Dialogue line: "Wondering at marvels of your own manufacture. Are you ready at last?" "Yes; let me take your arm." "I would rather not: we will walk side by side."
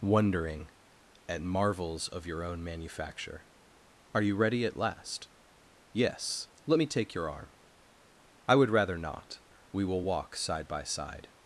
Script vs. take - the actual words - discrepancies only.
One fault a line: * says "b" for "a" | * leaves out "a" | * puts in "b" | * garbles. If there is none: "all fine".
all fine